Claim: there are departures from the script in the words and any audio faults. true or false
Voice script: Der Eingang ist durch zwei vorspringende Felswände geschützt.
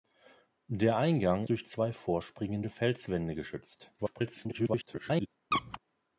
true